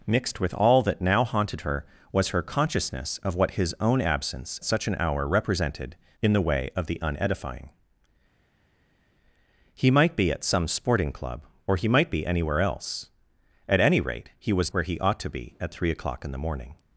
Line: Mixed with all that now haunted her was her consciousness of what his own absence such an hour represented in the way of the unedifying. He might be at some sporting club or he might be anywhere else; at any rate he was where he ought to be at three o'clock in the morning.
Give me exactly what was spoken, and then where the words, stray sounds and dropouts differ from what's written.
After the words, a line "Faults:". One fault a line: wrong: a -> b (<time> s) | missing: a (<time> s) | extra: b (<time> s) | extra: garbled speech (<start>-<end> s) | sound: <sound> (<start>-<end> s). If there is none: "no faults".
Mixed with all that now haunted her was her consciousness of what his own absence such an hour represented in the way of the unedifying. He might be at some sporting club or he might be anywhere else; at any rate he was where he ought to be at three o'clock in the morning.
Faults:
no faults